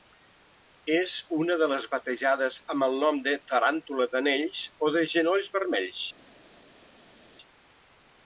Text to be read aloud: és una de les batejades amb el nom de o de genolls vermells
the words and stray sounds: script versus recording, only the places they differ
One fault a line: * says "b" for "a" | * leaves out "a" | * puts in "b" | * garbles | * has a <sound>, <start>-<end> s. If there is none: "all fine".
* puts in "taràntula d'anells"